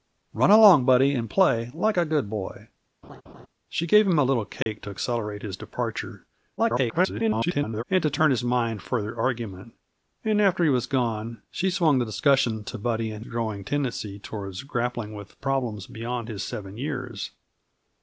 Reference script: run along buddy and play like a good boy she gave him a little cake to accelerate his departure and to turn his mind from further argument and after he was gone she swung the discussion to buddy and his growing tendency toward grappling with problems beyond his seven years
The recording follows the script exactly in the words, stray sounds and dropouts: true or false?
false